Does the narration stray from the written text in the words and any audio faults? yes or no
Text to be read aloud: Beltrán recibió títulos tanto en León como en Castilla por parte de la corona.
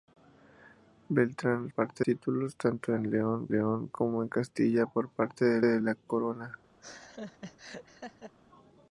yes